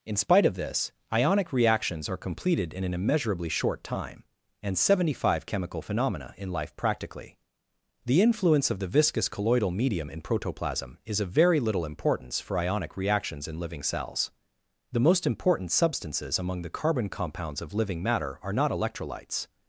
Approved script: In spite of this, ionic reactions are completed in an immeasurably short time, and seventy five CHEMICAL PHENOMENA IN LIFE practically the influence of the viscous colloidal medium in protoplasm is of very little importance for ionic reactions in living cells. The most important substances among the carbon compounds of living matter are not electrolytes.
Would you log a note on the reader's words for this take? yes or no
no